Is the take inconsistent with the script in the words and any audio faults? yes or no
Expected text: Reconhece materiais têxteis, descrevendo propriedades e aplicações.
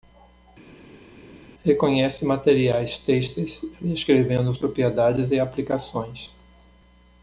no